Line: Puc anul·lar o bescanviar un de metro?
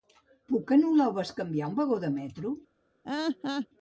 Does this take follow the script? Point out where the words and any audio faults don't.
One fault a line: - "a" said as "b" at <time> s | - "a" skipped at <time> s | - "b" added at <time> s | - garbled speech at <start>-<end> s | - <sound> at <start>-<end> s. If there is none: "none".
- "vagó" added at 1.8 s
- laugh at 3.0-3.7 s